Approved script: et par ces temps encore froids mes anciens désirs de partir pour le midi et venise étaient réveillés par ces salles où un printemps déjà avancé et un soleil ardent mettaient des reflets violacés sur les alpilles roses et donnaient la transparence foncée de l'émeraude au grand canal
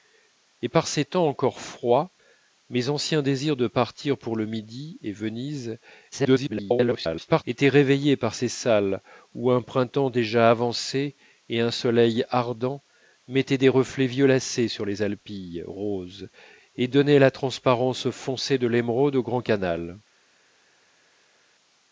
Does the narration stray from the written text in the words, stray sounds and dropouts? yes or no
yes